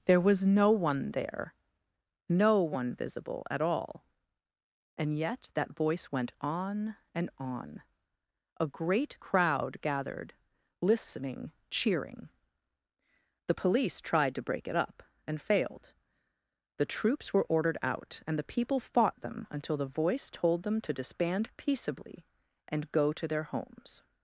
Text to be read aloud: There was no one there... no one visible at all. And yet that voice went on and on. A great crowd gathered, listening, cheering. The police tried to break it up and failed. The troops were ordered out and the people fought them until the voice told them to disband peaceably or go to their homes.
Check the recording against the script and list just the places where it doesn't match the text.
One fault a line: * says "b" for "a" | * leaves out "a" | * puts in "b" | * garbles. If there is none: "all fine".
* says "and" for "or"